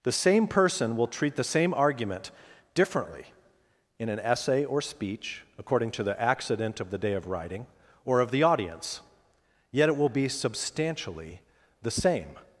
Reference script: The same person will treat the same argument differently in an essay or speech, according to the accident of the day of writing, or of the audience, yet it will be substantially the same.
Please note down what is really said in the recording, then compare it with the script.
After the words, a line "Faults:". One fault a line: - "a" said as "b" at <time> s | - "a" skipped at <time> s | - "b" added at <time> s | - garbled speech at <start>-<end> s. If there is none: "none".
The same person will treat the same argument differently in an essay or speech, according to the accident of the day of writing, or of the audience, yet it will be substantially the same.
Faults:
none